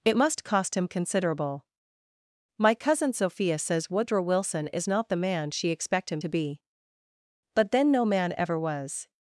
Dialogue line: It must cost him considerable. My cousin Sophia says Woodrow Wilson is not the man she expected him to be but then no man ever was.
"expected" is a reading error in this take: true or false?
true